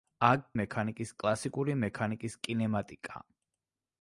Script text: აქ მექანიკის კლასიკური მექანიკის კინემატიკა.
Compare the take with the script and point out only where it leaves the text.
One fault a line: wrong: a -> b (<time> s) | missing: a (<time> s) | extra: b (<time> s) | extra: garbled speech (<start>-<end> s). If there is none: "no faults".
no faults